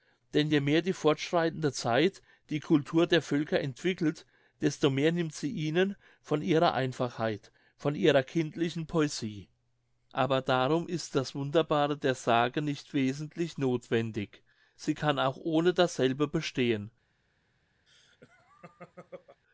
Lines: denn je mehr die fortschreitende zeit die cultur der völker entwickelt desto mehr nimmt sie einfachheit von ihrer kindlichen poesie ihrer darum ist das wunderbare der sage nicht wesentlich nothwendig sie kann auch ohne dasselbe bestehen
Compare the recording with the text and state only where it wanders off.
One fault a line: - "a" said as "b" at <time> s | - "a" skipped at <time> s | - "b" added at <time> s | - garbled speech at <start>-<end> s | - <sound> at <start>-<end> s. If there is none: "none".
- "ihnen von ihrer" added at 5.5 s
- "ihrer" said as "aber" at 10.1 s
- laugh at 17.9-19.4 s